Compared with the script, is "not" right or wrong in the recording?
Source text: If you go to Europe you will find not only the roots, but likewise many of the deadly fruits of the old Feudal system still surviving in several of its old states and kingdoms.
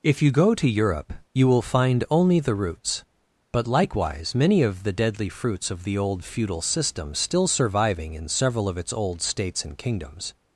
wrong